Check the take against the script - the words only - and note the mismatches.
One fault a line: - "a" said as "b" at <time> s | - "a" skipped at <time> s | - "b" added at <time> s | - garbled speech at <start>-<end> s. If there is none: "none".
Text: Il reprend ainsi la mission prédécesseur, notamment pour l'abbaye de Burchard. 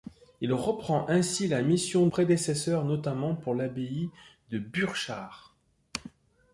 none